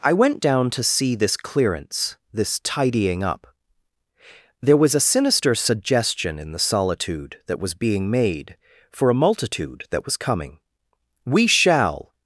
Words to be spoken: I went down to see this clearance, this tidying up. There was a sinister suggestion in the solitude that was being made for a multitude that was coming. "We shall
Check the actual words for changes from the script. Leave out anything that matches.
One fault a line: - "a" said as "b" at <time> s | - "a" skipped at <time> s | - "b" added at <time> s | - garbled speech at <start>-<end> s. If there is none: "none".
none